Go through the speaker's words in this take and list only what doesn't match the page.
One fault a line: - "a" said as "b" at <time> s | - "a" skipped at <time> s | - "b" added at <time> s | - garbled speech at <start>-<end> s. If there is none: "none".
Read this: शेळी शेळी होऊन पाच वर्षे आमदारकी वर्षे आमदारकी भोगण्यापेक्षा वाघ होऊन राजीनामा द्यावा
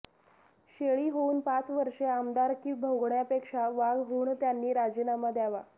- "शेळी" skipped at 1.1 s
- "वर्षे आमदारकी" skipped at 2.7 s
- "त्यांनी" added at 4.3 s